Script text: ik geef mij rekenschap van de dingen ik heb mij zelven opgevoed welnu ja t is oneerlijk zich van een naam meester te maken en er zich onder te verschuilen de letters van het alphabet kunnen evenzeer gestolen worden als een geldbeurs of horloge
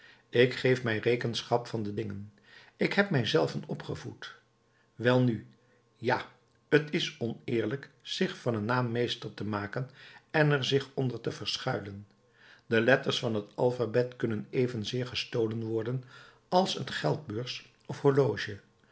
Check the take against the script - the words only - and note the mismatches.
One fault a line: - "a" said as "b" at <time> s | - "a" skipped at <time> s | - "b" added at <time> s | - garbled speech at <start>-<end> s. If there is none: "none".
none